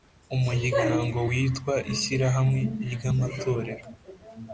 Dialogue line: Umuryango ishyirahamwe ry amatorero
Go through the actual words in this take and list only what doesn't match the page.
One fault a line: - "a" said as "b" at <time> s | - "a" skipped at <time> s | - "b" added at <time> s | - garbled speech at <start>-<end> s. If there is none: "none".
- "witwa" added at 1.3 s